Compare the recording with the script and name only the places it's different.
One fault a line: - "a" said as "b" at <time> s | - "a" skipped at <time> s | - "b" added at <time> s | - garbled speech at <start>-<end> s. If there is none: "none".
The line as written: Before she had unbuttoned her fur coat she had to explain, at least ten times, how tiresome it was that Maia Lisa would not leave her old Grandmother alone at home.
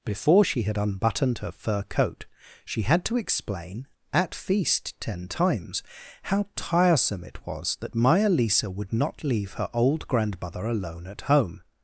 - "least" said as "feast" at 4.3 s